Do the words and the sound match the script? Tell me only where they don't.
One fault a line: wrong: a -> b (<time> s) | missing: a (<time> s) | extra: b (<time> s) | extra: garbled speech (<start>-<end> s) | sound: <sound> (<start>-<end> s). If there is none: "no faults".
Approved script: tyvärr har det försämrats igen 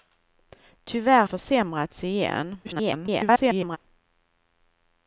missing: har det (1.2 s)
extra: garbled speech (2.6-3.8 s)